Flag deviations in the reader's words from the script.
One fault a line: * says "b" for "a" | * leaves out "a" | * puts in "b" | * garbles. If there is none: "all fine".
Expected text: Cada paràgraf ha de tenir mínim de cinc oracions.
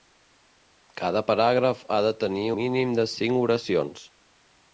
all fine